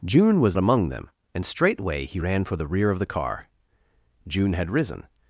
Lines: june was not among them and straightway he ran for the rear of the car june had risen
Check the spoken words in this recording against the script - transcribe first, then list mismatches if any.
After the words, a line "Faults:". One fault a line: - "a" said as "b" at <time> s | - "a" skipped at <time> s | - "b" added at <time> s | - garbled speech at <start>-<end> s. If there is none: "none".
june was among them and straightway he ran for the rear of the car june had risen
Faults:
- "not" skipped at 0.6 s